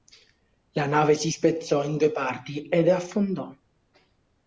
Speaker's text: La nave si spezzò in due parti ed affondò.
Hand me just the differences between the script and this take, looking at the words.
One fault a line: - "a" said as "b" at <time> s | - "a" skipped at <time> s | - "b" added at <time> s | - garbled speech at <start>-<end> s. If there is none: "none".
none